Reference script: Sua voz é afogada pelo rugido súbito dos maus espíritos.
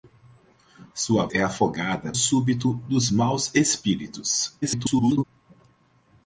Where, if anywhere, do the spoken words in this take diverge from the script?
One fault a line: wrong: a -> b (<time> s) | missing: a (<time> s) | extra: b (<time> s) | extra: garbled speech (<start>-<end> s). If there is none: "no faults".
missing: voz (1.3 s)
missing: pelo rugido (2.1 s)
extra: garbled speech (4.6-5.2 s)